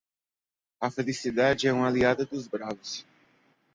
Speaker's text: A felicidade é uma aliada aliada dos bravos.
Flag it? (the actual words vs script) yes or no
yes